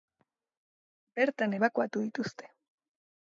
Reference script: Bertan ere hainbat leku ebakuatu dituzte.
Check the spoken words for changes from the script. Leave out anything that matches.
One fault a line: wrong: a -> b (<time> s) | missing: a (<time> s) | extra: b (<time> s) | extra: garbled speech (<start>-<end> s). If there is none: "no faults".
missing: ere hainbat leku (1.6 s)